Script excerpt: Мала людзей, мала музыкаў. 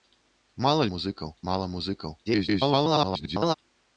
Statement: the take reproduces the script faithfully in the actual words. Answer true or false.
false